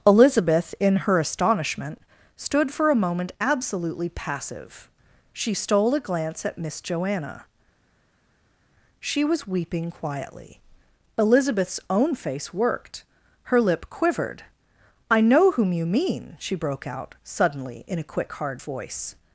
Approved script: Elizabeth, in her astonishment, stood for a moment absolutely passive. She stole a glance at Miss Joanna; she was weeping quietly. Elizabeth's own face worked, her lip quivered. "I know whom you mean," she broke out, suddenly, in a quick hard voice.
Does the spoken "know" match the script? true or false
true